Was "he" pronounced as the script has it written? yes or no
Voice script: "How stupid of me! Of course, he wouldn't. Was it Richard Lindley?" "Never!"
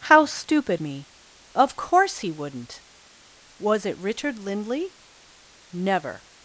yes